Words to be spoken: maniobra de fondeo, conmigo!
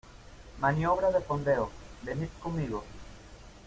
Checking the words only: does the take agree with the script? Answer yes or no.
no